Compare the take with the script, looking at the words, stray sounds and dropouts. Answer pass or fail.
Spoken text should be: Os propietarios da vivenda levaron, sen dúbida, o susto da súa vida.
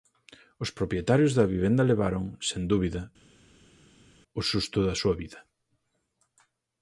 pass